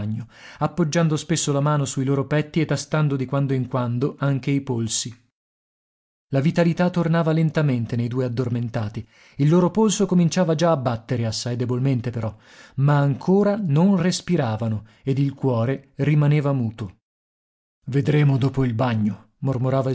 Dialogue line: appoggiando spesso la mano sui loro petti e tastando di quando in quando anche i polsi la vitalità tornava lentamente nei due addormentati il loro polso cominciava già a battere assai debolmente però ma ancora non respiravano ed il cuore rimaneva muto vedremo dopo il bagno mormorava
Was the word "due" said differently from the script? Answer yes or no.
no